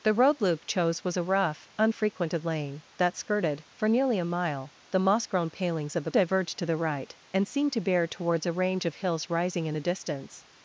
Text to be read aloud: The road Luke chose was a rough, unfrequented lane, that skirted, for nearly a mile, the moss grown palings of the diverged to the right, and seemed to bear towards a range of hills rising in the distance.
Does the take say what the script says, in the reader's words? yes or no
yes